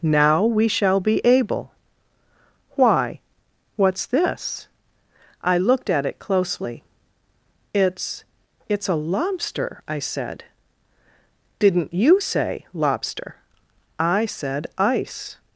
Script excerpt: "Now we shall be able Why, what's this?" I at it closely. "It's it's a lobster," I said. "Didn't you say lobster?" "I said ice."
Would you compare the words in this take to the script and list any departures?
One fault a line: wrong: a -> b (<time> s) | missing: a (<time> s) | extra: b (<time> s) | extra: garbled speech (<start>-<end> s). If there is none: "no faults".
extra: looked (5.6 s)